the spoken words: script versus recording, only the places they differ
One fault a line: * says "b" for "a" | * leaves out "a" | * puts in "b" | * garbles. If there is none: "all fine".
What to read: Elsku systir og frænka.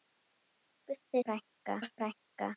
* says "frænka" for "systir"